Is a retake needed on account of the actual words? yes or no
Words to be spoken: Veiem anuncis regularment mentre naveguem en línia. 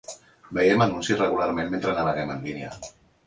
no